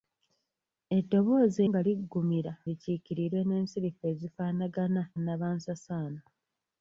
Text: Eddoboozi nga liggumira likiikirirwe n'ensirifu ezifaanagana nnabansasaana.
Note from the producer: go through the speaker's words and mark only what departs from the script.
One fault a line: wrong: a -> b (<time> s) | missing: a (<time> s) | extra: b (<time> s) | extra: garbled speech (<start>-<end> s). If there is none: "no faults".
no faults